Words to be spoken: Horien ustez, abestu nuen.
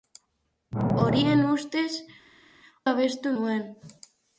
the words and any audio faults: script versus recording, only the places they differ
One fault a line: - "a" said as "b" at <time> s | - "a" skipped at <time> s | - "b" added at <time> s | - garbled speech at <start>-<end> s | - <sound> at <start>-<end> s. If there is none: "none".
none